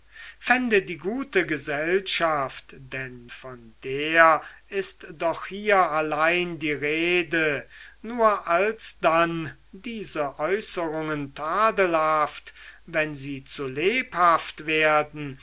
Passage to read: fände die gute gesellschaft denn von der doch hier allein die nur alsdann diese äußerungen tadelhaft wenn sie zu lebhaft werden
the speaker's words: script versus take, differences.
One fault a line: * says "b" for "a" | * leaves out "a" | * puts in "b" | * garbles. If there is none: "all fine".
* puts in "ist"
* puts in "rede"